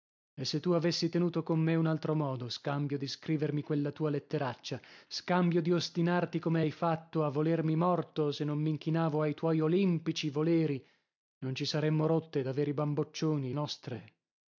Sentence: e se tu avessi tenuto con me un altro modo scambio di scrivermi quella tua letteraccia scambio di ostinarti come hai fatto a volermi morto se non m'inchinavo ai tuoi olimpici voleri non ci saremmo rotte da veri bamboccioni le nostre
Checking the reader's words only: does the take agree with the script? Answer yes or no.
no